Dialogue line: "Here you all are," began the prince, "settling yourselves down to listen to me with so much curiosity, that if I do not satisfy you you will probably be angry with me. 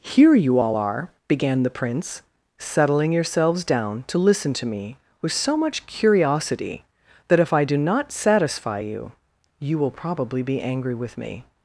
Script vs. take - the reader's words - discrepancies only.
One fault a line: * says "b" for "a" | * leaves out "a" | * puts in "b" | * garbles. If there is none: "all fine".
all fine